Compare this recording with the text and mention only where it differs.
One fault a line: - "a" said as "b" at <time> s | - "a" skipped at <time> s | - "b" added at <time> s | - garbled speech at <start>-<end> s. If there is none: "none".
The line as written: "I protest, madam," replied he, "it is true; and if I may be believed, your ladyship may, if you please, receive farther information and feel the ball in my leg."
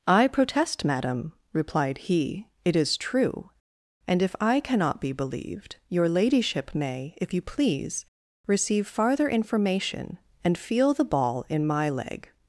- "may" said as "cannot" at 4.6 s